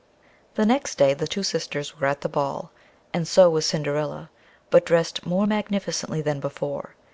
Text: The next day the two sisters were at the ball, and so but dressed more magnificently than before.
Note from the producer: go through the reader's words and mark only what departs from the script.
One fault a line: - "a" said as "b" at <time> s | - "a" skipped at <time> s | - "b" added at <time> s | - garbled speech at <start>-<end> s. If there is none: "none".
- "was Cinderilla" added at 3.5 s